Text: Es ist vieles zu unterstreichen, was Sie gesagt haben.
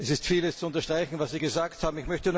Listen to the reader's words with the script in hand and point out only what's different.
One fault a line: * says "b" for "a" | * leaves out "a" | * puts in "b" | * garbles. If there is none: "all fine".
all fine